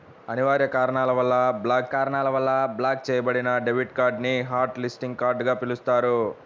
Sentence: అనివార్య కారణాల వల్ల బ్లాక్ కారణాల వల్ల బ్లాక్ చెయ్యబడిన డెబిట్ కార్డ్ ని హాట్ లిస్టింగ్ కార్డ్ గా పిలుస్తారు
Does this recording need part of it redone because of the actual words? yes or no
no